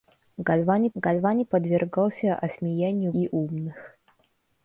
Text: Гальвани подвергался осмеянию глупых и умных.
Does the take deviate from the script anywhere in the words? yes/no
yes